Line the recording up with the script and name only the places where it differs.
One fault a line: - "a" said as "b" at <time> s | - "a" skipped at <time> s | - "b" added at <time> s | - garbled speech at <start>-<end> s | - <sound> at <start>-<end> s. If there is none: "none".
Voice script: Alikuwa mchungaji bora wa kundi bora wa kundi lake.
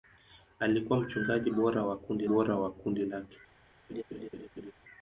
- laugh at 3.9-4.7 s